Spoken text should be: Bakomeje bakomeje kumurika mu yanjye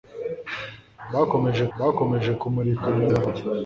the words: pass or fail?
pass